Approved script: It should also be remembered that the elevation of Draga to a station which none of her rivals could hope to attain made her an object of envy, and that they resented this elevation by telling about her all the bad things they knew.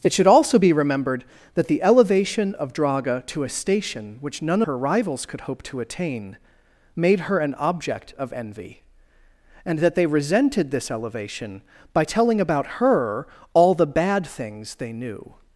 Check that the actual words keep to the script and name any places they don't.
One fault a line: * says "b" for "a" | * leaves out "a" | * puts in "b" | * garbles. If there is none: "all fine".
* leaves out "of"